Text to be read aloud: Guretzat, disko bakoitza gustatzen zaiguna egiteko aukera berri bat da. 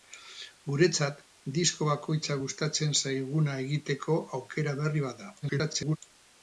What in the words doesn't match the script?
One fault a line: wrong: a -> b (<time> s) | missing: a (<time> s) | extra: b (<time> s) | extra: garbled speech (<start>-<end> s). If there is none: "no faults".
extra: garbled speech (5.4-6.0 s)